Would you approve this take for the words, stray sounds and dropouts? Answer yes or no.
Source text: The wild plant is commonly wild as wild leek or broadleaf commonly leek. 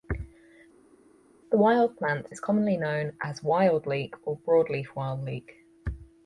no